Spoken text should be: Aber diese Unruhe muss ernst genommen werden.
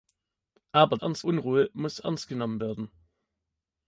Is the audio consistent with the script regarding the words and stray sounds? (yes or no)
no